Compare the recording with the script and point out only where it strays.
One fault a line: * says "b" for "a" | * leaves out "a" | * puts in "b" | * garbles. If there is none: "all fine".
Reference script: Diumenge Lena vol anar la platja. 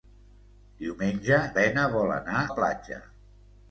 all fine